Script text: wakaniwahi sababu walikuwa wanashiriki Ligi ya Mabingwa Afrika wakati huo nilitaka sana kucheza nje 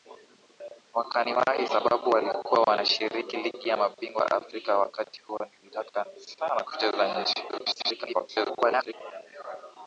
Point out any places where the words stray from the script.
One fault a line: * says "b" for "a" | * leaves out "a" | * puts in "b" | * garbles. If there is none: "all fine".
* garbles